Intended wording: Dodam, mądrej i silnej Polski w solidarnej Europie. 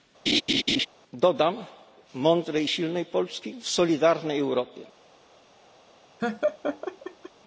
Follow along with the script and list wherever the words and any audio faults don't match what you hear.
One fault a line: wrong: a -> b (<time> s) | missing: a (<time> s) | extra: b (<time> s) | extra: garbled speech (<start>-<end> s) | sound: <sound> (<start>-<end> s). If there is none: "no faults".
sound: laugh (0.3-0.9 s)
sound: laugh (6.2-7.3 s)